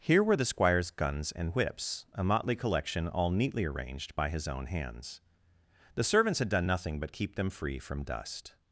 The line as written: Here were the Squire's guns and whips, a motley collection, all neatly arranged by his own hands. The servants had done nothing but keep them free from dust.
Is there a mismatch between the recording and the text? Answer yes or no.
no